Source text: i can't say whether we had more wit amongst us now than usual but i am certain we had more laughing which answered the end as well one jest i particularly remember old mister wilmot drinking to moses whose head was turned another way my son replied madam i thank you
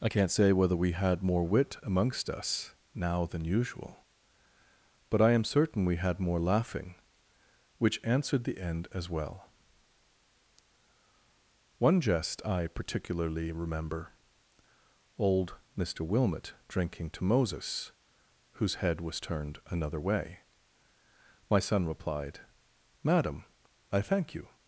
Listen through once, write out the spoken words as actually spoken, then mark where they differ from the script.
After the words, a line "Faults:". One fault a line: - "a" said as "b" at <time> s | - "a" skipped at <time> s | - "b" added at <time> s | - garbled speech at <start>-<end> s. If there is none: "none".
i can't say whether we had more wit amongst us now than usual but i am certain we had more laughing which answered the end as well one jest i particularly remember old mister wilmot drinking to moses whose head was turned another way my son replied madam i thank you
Faults:
none